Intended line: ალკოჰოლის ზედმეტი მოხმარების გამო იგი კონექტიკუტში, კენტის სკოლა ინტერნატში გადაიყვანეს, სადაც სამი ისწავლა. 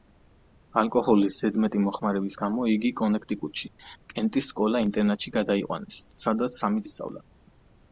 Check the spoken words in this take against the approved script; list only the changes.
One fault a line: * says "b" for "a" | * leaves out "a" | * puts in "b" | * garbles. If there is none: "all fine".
all fine